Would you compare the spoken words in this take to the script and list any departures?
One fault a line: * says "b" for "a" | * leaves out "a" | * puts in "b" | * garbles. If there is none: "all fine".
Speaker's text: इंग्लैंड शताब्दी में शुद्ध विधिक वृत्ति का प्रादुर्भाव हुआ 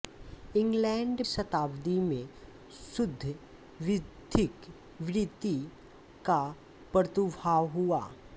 all fine